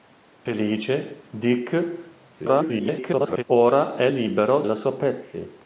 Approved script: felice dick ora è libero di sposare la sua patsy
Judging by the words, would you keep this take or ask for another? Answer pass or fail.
fail